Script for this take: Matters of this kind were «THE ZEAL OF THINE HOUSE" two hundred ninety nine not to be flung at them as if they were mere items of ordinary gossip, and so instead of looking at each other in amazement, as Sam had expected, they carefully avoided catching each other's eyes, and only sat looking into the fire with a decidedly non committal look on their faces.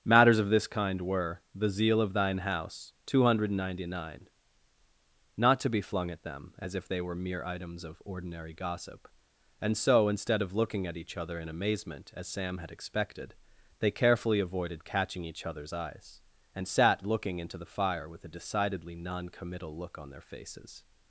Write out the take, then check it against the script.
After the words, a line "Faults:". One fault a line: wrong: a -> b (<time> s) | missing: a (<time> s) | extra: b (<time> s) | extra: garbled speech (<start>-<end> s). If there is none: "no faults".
Matters of this kind were «THE ZEAL OF THINE HOUSE" two hundred ninety nine not to be flung at them as if they were mere items of ordinary gossip, and so instead of looking at each other in amazement, as Sam had expected, they carefully avoided catching each other's eyes, and sat looking into the fire with a decidedly non committal look on their faces.
Faults:
missing: only (16.7 s)